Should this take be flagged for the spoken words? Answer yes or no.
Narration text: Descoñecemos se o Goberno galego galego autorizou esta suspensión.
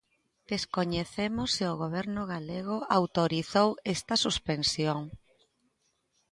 yes